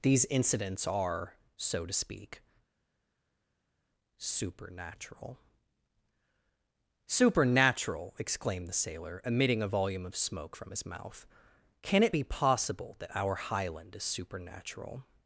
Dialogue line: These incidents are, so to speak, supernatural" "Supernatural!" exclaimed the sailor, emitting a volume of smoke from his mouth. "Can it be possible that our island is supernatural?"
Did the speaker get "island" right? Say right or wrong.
wrong